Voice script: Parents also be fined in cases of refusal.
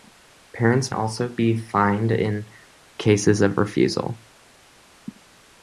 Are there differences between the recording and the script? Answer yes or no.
no